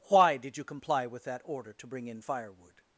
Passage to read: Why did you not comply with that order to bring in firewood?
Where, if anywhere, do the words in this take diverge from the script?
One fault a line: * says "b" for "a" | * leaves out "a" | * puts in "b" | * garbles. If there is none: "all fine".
* leaves out "not"